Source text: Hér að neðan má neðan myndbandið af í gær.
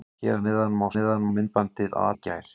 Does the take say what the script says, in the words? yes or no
yes